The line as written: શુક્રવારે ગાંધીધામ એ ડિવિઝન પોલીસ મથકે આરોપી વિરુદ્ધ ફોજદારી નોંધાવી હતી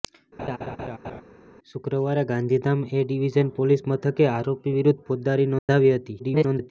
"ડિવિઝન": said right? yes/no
yes